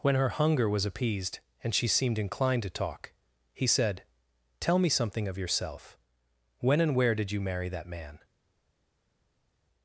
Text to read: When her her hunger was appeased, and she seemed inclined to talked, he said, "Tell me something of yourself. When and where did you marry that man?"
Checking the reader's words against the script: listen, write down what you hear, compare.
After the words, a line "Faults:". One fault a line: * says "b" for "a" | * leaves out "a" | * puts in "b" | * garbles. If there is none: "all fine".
When her hunger was appeased, and she seemed inclined to talk, he said, "Tell me something of yourself. When and where did you marry that man?"
Faults:
* leaves out "her"
* says "talk" for "talked"